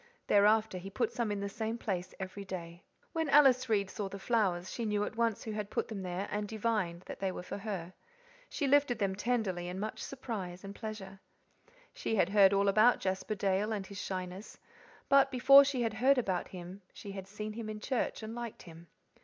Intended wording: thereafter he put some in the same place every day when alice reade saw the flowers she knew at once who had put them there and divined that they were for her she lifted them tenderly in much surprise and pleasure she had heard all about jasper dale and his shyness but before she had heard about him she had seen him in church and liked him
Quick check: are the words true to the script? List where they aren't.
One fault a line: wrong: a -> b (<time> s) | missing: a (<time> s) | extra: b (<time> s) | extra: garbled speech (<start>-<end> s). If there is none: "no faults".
no faults